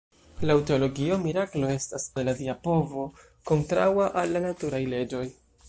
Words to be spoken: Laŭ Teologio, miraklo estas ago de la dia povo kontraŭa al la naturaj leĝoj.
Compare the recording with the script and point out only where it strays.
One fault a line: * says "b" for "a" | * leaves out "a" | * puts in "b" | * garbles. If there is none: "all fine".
* leaves out "ago"